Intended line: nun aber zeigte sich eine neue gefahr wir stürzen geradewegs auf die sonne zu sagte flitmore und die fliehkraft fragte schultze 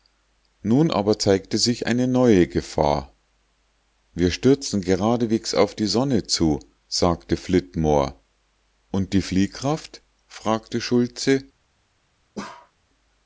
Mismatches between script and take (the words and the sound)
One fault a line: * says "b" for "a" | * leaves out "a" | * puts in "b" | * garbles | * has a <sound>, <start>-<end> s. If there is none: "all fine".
* has a bark, 12.4-12.7 s